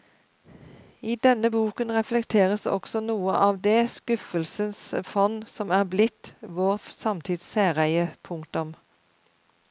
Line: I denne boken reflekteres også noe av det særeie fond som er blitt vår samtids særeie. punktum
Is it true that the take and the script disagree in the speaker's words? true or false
true